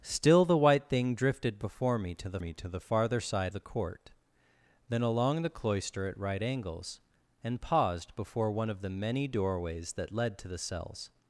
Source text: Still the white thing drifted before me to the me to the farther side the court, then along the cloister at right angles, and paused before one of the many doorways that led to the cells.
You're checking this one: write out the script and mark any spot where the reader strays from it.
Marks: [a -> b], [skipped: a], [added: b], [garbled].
Still the white thing drifted before me to the me to the farther side the court, then along the cloister at right angles, and paused before one of the many doorways that led to the cells.